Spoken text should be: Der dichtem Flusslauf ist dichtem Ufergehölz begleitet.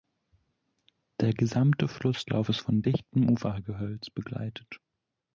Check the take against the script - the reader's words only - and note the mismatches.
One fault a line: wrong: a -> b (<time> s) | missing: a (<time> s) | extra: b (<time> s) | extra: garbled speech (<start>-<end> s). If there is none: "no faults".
wrong: dichtem -> gesamte (1.3 s)
extra: von (2.6 s)